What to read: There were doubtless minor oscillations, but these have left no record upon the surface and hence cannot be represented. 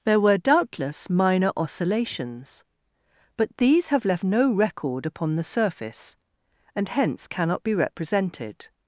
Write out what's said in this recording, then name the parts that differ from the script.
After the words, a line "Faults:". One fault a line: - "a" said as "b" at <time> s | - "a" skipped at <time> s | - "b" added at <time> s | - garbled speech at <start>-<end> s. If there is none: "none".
There were doubtless minor oscillations, but these have left no record upon the surface and hence cannot be represented.
Faults:
none